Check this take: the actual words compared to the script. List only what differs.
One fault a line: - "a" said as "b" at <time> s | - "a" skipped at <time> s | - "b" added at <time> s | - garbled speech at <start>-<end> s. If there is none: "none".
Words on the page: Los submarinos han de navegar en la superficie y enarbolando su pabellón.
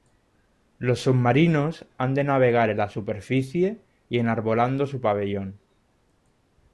none